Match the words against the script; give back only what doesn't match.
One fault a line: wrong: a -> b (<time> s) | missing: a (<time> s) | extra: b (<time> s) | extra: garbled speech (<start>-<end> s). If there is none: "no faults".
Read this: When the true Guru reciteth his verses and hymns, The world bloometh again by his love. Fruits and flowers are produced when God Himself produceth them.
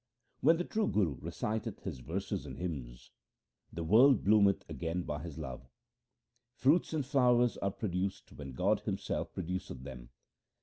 no faults